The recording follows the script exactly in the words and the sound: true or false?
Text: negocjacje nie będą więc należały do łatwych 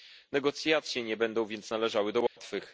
false